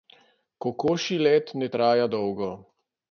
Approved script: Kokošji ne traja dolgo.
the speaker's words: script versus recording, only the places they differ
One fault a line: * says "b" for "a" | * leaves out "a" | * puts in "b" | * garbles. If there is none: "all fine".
* puts in "let"